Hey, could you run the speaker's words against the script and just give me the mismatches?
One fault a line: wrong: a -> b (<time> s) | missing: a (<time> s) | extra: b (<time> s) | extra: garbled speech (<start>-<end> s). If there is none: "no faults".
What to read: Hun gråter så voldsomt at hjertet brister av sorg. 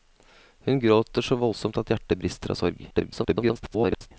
extra: garbled speech (2.9-4.1 s)